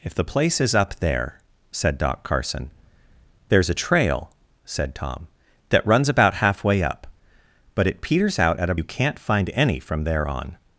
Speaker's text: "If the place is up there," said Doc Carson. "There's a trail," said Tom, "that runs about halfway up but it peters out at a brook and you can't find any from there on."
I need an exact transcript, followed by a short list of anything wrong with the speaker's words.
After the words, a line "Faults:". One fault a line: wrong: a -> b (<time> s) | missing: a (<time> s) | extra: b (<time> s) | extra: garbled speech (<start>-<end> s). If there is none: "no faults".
"If the place is up there," said Doc Carson. "There's a trail," said Tom, "that runs about halfway up but it peters out at a you can't find any from there on."
Faults:
missing: brook and (8.8 s)